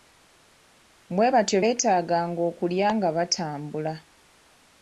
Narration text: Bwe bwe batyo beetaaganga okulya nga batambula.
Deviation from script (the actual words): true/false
true